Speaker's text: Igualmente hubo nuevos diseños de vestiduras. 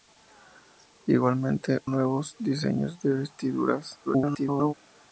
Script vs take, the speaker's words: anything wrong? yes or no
yes